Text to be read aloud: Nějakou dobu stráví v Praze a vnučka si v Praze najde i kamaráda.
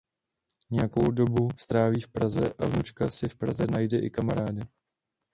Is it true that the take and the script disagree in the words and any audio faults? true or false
false